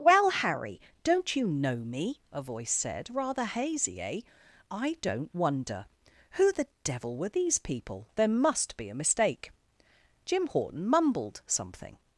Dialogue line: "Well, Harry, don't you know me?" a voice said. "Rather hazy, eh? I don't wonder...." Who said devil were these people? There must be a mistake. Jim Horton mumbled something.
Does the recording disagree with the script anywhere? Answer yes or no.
yes